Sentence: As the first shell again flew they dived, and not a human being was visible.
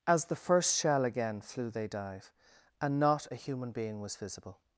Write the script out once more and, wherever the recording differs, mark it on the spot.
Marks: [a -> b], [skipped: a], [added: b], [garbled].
As the first shell again flew they [dived, -> dive] and not a human being was visible.